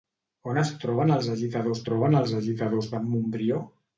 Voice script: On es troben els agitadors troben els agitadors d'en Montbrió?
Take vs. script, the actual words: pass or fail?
pass